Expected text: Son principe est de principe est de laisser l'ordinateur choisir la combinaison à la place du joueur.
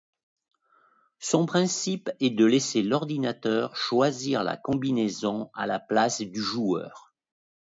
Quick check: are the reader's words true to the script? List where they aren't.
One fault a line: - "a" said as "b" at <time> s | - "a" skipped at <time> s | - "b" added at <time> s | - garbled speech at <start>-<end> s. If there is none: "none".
- "principe est de" skipped at 2.4 s